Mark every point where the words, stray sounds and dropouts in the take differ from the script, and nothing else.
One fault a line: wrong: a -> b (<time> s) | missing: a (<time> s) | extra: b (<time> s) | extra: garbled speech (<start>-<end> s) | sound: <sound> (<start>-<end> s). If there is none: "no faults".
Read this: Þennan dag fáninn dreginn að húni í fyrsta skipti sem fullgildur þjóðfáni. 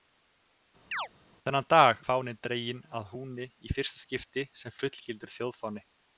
sound: chirp (0.9-1.1 s)